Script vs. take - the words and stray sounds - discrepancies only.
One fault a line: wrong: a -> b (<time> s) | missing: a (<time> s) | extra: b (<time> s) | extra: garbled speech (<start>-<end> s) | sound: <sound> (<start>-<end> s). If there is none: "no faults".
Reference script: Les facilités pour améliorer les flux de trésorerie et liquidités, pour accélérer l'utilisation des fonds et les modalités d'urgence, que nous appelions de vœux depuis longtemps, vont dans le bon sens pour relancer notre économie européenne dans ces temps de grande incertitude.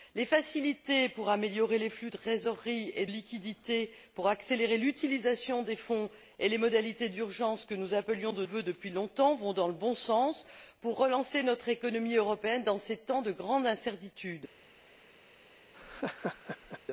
sound: laugh (15.7-16.8 s)